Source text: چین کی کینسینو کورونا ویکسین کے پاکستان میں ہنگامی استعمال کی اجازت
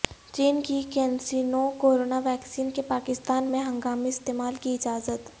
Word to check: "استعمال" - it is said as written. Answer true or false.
true